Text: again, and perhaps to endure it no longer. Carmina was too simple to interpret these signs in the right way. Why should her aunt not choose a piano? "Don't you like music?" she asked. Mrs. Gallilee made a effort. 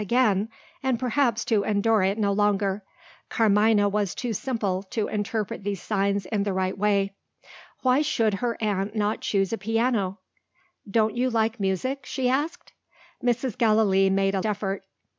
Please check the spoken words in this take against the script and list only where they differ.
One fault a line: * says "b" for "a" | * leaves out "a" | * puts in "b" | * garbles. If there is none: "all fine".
all fine